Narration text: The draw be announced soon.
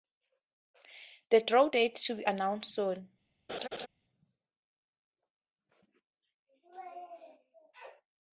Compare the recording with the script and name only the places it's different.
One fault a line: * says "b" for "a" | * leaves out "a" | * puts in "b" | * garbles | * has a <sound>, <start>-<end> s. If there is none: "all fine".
* puts in "date to"
* has a laugh, 3.5-3.9 s